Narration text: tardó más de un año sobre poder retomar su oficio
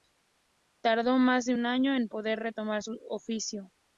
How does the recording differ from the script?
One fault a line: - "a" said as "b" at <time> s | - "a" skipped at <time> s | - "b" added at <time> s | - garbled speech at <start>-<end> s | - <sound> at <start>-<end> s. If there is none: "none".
- "sobre" said as "en" at 1.9 s